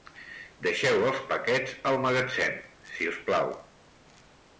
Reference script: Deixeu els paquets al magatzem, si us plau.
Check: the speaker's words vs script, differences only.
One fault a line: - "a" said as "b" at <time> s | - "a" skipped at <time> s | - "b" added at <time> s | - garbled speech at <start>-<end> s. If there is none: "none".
none